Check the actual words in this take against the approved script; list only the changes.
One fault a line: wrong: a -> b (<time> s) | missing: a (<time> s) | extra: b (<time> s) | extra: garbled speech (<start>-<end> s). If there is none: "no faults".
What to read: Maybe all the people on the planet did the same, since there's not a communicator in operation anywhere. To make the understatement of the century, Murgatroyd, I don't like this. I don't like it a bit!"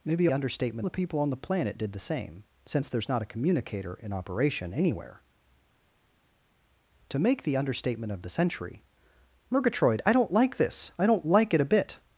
wrong: all -> understatement (0.3 s)